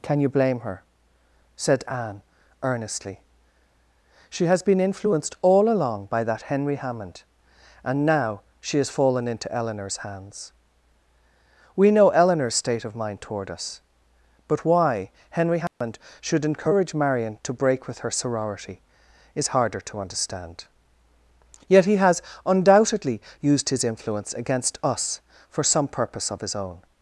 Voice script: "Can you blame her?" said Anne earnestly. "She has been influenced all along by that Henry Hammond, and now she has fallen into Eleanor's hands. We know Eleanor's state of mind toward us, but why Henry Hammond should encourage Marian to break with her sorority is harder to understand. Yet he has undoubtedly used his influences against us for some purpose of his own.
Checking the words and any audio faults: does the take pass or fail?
fail